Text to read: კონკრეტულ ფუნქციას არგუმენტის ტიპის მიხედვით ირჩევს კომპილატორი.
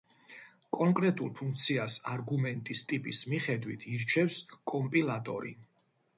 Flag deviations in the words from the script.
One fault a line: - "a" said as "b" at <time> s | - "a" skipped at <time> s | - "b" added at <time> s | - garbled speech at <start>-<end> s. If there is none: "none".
none